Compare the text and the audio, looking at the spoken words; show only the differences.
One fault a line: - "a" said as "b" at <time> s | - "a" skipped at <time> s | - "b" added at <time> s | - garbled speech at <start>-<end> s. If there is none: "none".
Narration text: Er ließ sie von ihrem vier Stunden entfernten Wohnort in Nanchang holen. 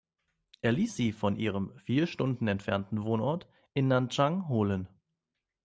none